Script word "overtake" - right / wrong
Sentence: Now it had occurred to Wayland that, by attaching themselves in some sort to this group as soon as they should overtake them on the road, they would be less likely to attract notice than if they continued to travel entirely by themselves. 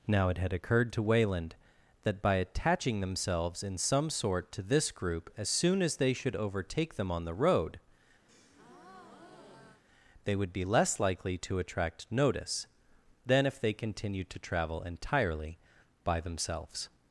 right